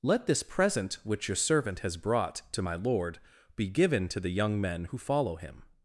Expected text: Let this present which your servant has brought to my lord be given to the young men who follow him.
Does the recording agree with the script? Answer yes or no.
yes